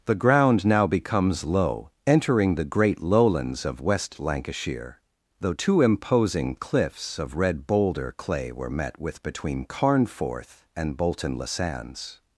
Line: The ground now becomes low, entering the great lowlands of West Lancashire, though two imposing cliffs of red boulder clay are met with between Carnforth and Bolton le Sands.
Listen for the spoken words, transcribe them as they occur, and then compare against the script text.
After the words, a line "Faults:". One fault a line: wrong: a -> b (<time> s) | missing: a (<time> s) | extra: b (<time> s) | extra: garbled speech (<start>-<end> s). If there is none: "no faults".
The ground now becomes low, entering the great lowlands of West Lancashire, though two imposing cliffs of red boulder clay were met with between Carnforth and Bolton le Sands.
Faults:
wrong: are -> were (8.5 s)